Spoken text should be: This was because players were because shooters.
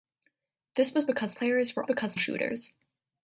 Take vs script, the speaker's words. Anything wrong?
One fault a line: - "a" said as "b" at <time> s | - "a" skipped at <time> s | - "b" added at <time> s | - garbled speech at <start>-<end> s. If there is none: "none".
none